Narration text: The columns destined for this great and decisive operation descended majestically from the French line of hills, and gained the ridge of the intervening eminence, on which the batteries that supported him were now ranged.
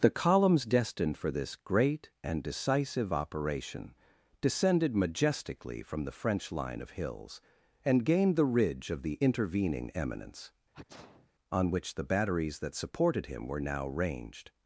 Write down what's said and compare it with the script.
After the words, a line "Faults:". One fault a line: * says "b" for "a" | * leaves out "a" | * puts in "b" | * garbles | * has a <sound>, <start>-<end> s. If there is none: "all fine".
The columns destined for this great and decisive operation descended majestically from the French line of hills, and gained the ridge of the intervening eminence, on which the batteries that supported him were now ranged.
Faults:
* has a sneeze, 10.7-11.3 s